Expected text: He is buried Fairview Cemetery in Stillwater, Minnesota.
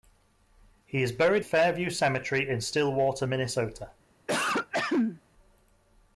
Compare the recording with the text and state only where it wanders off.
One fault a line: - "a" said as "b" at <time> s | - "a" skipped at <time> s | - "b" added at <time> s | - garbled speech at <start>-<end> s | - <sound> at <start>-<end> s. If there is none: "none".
- throat clearing at 4.3-5.2 s